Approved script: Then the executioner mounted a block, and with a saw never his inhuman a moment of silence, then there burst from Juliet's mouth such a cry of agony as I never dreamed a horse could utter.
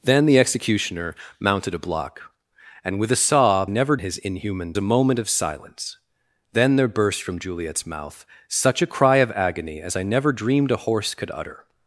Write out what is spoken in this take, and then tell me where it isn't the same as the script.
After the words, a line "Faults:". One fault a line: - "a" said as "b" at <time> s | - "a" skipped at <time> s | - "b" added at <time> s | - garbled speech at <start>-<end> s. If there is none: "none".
Then the executioner mounted a block, and with a saw never his inhuman a moment of silence, then there burst from Juliet's mouth such a cry of agony as I never dreamed a horse could utter.
Faults:
none